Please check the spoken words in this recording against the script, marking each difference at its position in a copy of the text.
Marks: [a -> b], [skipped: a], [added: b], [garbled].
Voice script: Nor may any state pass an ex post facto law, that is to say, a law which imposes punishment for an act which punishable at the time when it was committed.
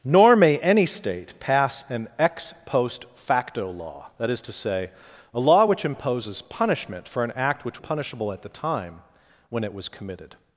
Nor may any state pass an ex post facto law, that is to say, a law which imposes punishment for an act which punishable at the time when it was committed.